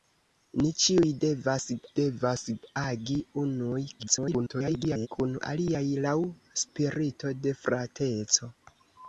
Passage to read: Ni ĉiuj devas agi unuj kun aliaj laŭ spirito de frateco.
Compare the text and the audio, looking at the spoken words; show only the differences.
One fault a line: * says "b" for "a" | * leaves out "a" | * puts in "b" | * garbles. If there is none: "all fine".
* puts in "devas"
* garbles